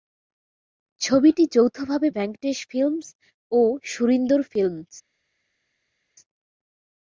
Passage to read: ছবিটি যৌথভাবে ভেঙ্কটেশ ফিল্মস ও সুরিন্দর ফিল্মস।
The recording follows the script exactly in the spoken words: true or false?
true